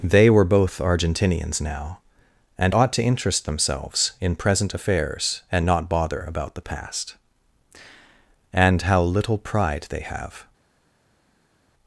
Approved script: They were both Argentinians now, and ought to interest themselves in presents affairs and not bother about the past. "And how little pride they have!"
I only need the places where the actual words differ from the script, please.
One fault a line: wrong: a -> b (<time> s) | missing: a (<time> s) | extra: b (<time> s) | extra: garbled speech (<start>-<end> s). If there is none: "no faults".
wrong: presents -> present (4.4 s)